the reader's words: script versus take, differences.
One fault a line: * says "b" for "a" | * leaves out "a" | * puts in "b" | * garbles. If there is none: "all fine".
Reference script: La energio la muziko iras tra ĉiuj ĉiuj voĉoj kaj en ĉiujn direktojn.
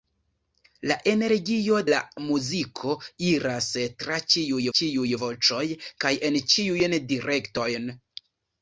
all fine